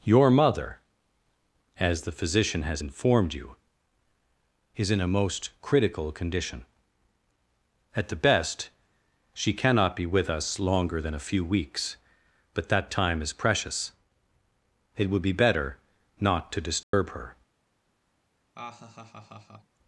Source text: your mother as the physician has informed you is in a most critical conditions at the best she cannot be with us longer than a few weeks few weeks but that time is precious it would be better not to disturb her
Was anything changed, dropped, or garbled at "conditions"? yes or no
yes